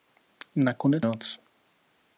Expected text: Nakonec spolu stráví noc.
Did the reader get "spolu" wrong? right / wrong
wrong